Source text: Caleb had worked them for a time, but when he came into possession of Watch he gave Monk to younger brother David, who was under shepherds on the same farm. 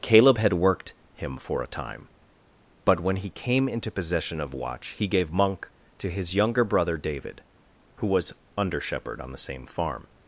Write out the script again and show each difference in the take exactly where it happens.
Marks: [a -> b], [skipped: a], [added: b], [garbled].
Caleb had worked [them -> him] for a time, but when he came into possession of Watch he gave Monk to [added: his] younger brother David, who was under [shepherds -> shepherd] on the same farm.